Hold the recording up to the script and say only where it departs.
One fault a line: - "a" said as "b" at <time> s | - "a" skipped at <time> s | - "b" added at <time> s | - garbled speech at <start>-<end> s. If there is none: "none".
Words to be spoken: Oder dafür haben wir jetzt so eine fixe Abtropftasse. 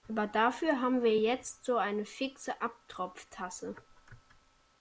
- "Oder" said as "Aber" at 0.1 s